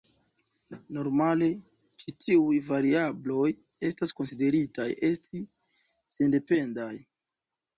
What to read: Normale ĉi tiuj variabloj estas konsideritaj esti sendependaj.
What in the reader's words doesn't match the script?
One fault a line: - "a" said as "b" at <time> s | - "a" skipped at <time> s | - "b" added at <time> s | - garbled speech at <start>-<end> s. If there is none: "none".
none